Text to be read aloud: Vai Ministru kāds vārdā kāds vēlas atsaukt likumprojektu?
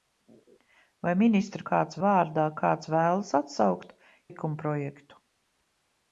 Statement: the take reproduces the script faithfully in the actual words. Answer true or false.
true